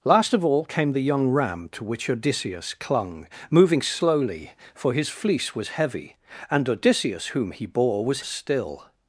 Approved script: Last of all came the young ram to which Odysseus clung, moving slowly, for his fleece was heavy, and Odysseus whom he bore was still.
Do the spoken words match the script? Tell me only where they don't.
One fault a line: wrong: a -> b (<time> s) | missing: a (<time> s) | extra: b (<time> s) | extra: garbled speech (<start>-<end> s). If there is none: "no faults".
no faults